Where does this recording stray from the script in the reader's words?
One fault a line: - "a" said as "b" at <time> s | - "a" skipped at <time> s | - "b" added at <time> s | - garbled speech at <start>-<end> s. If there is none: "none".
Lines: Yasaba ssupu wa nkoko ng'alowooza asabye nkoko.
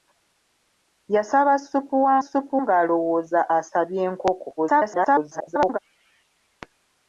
- "nkoko" said as "ssupu" at 2.2 s
- garbled speech at 4.6-5.8 s